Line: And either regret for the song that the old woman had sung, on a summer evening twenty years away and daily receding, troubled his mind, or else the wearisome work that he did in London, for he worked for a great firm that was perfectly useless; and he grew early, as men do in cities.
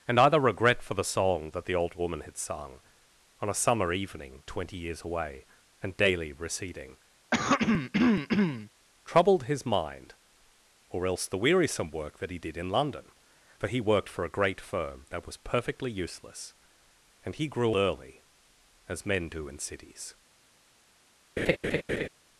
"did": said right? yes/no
yes